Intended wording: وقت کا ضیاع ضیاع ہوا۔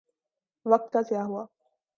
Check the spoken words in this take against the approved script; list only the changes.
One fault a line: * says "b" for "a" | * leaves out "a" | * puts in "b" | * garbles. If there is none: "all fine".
* leaves out "ضیاع"